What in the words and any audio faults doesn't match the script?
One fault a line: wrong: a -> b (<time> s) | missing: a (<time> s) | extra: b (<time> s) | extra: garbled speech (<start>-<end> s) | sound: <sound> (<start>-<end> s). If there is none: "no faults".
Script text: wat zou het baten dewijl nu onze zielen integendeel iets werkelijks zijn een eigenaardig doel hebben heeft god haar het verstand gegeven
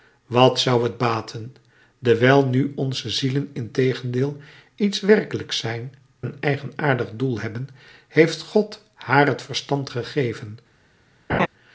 sound: laugh (11.3-11.5 s)